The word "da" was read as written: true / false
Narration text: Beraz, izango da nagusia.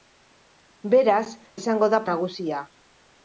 true